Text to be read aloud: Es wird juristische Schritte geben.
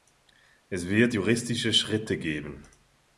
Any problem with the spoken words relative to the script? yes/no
no